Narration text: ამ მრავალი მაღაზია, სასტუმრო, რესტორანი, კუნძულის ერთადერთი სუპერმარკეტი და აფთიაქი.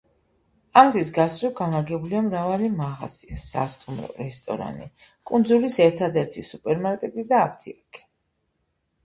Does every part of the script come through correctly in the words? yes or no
no